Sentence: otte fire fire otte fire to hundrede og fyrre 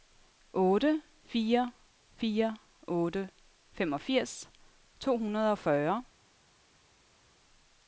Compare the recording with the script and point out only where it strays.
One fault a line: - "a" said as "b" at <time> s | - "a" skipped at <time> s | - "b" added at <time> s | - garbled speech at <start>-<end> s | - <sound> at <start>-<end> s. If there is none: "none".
- "fire" said as "femogfirs" at 3.7 s